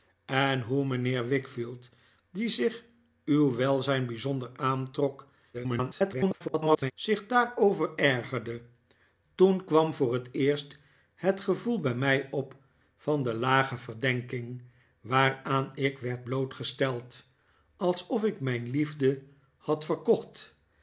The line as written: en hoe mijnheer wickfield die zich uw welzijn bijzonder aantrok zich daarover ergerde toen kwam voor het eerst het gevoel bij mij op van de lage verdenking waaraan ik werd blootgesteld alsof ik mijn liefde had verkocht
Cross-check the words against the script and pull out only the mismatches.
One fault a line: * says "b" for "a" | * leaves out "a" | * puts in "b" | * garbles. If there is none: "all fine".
* garbles